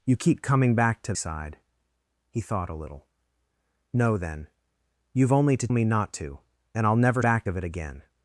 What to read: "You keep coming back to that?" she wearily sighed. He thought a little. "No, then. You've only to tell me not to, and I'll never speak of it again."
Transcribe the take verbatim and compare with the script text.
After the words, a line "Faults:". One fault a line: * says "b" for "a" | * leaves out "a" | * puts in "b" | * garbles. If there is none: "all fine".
"You keep coming back to sighed. He thought a little. "No, then. You've only to me not to, and I'll never back of it again."
Faults:
* leaves out "that she wearily"
* leaves out "tell"
* says "back" for "speak"